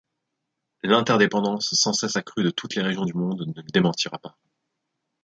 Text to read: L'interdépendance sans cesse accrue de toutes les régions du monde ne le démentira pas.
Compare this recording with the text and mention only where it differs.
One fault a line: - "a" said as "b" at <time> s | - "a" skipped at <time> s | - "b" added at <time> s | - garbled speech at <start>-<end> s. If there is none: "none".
none